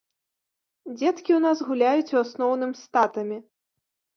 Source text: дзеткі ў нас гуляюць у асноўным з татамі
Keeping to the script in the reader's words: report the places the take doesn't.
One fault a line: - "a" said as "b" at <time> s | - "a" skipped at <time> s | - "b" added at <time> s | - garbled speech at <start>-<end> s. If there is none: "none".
none